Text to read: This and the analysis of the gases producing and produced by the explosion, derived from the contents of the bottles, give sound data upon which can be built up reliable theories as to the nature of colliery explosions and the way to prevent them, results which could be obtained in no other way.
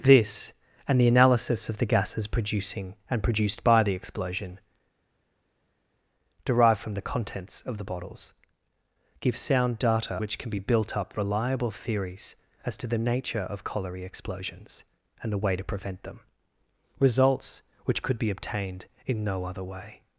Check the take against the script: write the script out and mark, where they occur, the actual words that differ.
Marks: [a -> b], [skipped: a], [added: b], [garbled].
This and the analysis of the gases producing and produced by the explosion, derived from the contents of the bottles, give sound data [skipped: upon] which can be built up reliable theories as to the nature of colliery explosions and the way to prevent them, results which could be obtained in no other way.